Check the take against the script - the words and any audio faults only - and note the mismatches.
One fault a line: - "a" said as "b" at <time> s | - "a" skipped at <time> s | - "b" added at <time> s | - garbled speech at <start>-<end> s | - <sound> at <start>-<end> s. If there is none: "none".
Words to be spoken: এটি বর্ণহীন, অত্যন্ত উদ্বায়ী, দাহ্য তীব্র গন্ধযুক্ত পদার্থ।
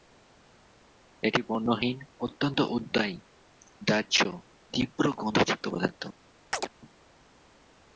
- chirp at 6.5-6.7 s